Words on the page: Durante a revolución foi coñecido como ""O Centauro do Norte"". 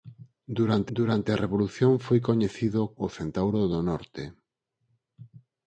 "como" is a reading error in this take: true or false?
true